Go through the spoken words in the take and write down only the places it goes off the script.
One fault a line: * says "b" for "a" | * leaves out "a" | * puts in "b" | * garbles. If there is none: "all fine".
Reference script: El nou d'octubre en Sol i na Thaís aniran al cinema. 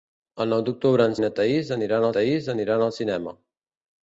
* leaves out "Sol"
* puts in "Thaís aniran"